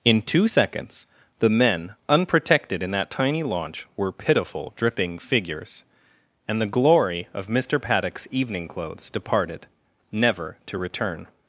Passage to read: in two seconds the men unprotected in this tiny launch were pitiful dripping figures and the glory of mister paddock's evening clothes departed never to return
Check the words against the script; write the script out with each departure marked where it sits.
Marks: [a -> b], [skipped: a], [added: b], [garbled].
in two seconds the men unprotected in [this -> that] tiny launch were pitiful dripping figures and the glory of mister paddock's evening clothes departed never to return